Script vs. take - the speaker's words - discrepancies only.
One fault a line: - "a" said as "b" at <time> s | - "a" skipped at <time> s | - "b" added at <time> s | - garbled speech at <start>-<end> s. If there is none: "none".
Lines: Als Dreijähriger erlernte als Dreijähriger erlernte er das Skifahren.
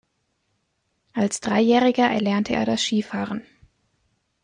- "als Dreijähriger erlernte" skipped at 2.5 s